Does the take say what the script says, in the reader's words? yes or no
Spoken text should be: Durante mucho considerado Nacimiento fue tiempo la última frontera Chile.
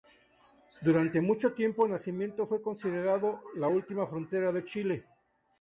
no